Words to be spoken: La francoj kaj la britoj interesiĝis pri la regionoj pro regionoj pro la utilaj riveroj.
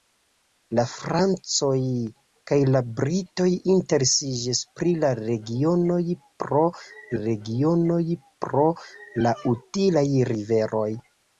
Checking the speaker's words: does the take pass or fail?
pass